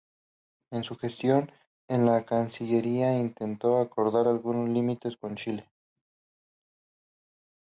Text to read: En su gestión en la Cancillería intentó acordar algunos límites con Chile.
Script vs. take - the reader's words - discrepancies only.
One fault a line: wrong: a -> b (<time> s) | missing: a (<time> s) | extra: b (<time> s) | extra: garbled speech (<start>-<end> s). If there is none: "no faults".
no faults